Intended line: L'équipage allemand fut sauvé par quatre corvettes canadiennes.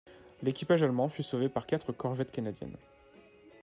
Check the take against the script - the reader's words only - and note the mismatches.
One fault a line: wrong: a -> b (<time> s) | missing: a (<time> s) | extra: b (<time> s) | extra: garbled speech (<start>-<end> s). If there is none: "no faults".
no faults